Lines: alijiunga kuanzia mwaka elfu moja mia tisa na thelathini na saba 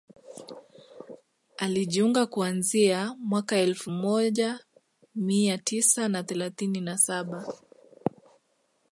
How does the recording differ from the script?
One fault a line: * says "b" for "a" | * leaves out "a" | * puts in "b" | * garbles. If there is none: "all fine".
all fine